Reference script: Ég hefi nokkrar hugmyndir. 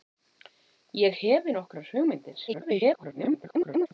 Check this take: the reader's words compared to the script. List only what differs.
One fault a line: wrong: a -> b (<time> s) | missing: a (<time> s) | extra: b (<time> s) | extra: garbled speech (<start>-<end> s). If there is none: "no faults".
extra: garbled speech (2.5-3.9 s)